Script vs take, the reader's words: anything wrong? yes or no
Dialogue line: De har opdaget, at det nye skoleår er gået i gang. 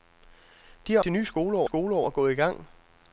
yes